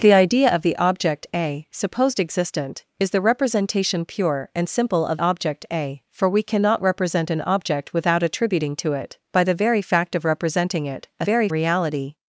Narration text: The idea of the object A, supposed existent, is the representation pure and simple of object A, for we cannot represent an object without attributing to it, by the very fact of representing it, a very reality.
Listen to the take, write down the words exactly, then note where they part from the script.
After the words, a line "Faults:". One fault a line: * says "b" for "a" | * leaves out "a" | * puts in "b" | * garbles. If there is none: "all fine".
The idea of the object A, supposed existent, is the representation pure and simple of object A, for we cannot represent an object without attributing to it, by the very fact of representing it, a very reality.
Faults:
all fine